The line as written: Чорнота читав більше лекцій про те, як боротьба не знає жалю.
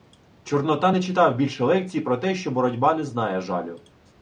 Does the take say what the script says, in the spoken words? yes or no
no